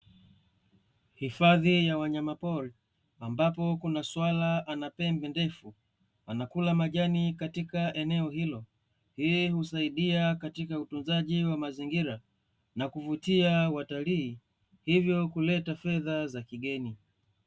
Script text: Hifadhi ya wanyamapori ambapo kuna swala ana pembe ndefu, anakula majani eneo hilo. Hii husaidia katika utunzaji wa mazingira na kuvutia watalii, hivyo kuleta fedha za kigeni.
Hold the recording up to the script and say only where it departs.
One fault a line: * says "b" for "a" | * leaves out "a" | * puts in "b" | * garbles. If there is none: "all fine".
* puts in "katika"